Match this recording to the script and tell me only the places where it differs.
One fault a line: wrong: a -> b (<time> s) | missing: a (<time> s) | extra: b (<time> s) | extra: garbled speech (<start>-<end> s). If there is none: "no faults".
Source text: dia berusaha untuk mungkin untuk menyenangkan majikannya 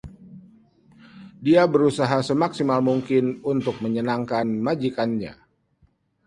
wrong: untuk -> semaksimal (2.2 s)